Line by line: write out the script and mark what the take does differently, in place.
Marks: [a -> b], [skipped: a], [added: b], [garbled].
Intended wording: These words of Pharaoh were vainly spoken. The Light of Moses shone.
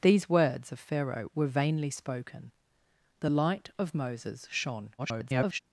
These words of Pharaoh were vainly spoken. The Light of Moses shone. [garbled]